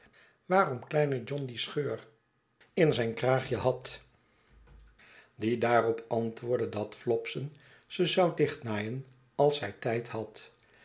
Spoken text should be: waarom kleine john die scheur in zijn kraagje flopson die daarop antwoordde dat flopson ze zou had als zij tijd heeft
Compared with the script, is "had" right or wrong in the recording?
wrong